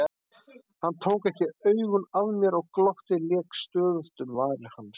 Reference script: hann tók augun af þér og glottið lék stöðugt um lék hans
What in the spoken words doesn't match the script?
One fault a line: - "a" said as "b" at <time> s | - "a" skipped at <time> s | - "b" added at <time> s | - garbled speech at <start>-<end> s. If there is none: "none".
- "ekki" added at 1.3 s
- "þér" said as "mér" at 2.4 s
- "lék" said as "varir" at 4.4 s